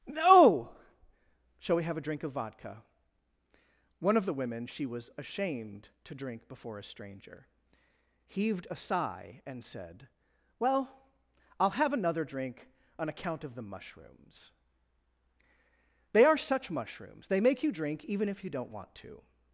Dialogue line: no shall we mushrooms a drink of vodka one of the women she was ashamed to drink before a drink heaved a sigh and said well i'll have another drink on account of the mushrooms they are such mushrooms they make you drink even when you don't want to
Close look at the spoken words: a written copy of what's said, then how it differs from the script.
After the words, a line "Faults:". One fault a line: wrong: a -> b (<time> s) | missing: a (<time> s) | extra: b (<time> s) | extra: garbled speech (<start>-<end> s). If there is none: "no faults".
no shall we have a drink of vodka one of the women she was ashamed to drink before a stranger heaved a sigh and said well i'll have another drink on account of the mushrooms they are such mushrooms they make you drink even if you don't want to
Faults:
wrong: mushrooms -> have (1.8 s)
wrong: drink -> stranger (6.8 s)
wrong: when -> if (18.3 s)